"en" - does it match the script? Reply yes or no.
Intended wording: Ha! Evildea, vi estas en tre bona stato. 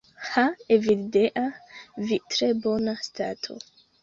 no